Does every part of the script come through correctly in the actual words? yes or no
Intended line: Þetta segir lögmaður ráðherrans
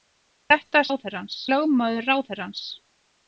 no